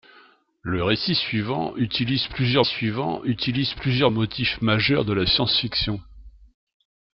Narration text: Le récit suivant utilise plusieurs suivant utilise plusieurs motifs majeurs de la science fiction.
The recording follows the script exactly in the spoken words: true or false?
true